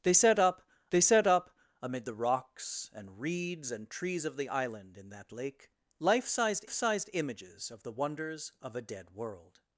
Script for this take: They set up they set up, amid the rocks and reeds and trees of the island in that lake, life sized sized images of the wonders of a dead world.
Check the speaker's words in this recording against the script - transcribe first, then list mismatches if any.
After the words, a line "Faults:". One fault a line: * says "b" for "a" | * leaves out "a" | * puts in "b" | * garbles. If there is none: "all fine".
They set up they set up, amid the rocks and reeds and trees of the island in that lake, life sized sized images of the wonders of a dead world.
Faults:
all fine